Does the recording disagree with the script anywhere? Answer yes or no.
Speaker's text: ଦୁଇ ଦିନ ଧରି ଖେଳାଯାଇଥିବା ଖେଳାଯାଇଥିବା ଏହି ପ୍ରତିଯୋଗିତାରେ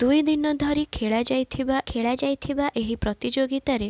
no